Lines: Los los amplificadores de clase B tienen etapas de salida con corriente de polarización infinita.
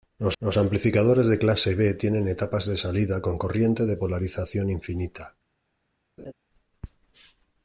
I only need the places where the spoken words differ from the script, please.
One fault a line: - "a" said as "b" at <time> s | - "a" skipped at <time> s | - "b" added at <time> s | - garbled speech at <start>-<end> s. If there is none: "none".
none